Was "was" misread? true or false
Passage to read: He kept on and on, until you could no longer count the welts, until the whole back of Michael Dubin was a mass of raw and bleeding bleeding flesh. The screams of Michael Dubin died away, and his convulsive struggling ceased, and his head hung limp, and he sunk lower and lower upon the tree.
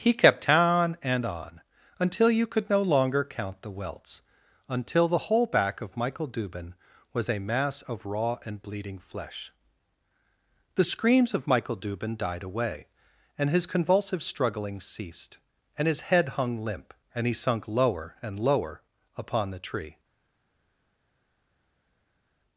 false